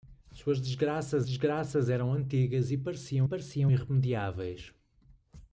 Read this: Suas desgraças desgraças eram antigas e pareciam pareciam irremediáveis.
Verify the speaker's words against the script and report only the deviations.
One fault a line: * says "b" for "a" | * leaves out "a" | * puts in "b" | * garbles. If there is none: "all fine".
all fine